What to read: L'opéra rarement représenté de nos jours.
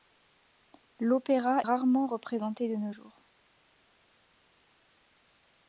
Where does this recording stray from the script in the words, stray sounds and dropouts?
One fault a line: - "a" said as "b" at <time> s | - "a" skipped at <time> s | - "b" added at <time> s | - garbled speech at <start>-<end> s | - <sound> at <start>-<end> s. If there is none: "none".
none